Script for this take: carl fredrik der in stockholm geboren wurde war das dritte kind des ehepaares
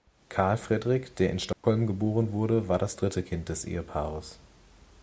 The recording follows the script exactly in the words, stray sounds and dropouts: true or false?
false